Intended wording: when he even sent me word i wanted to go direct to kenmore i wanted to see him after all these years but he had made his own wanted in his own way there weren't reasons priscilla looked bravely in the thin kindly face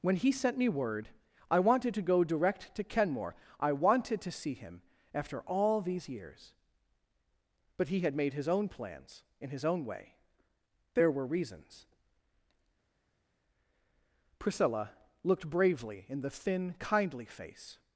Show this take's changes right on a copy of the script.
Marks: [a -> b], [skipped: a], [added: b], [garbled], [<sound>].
when he [skipped: even] sent me word i wanted to go direct to kenmore i wanted to see him after all these years but he had made his own [wanted -> plans] in his own way there [weren't -> were] reasons priscilla looked bravely in the thin kindly face